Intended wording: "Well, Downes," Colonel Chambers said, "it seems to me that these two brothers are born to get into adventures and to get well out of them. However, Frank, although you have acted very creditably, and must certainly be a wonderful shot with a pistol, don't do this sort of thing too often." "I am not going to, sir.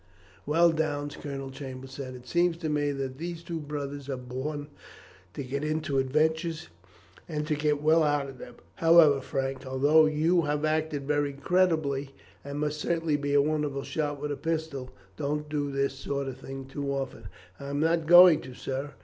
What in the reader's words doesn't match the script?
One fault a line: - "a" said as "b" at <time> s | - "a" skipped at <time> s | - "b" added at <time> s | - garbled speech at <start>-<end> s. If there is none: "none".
none